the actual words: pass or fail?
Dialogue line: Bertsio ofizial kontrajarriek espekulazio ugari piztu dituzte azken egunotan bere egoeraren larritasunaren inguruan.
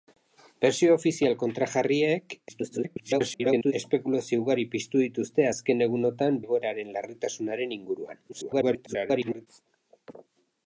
fail